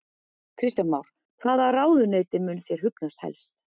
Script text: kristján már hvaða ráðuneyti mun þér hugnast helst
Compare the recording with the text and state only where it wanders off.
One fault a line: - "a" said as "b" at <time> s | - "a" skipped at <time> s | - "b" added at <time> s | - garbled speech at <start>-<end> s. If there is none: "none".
none